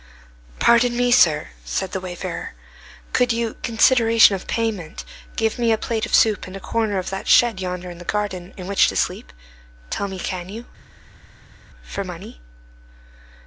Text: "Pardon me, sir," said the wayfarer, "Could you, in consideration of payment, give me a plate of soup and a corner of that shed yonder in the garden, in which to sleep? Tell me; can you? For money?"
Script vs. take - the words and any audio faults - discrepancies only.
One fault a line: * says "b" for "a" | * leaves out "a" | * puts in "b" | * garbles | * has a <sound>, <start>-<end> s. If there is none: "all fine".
* leaves out "in"